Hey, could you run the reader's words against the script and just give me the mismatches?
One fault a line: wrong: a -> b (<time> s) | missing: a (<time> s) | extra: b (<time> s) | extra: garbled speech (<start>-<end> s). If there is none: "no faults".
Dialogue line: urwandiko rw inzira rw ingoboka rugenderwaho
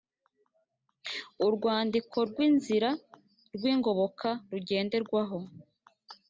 no faults